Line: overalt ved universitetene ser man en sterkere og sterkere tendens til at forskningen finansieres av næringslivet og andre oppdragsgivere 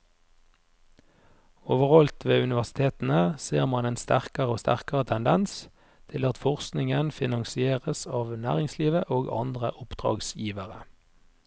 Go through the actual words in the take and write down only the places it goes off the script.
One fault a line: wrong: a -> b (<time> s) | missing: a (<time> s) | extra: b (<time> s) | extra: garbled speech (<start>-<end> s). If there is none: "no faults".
no faults